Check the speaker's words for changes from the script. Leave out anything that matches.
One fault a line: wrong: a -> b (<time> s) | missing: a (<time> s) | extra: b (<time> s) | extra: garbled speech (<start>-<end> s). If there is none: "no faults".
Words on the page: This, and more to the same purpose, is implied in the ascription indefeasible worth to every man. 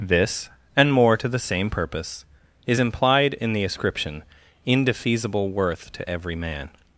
no faults